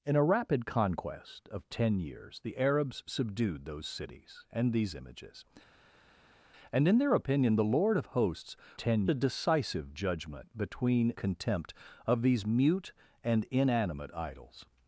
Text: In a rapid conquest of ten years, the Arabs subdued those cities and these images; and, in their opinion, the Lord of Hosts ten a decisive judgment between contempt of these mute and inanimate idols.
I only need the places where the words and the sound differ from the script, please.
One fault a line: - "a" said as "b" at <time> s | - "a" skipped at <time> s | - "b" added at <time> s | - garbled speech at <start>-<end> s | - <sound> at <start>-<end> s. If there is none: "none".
none